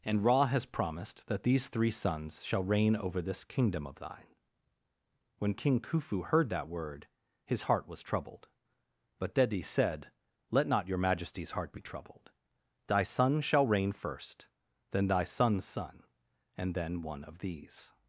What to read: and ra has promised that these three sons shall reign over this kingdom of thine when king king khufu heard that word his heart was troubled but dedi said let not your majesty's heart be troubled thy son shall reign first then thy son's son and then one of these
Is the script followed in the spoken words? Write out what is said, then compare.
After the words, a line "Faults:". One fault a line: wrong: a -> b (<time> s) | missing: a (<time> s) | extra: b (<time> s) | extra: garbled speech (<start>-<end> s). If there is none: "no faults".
and ra has promised that these three sons shall reign over this kingdom of thine when king khufu heard that word his heart was troubled but dedi said let not your majesty's heart be troubled thy son shall reign first then thy son's son and then one of these
Faults:
missing: king (5.8 s)